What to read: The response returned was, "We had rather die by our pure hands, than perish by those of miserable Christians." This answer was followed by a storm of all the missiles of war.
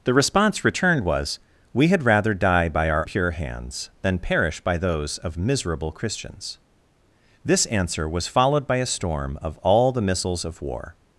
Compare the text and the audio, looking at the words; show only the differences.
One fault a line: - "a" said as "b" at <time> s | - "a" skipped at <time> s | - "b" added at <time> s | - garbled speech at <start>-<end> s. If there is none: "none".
none